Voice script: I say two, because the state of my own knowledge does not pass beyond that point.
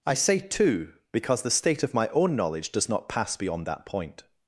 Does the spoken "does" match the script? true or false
true